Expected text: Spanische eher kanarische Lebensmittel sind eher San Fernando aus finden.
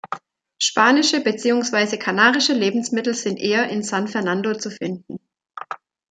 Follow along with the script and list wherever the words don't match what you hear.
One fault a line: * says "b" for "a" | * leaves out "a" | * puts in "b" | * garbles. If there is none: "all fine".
* says "beziehungsweise" for "eher"
* puts in "in"
* says "zu" for "aus"